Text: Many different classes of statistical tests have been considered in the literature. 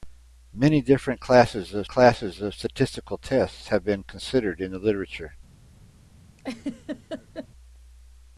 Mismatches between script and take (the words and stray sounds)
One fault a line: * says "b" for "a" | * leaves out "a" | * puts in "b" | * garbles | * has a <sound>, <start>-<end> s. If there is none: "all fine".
* puts in "classes of"
* has a laugh, 6.4-7.5 s